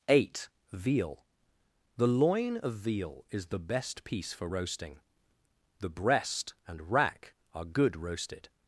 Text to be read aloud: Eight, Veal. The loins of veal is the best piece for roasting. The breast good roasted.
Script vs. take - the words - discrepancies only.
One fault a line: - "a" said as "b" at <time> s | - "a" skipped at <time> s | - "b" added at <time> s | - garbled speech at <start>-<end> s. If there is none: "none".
- "loins" said as "loin" at 2.1 s
- "and rack are" added at 6.7 s